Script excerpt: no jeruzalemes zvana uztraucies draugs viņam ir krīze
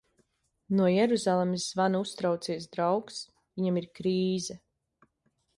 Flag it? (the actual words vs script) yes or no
no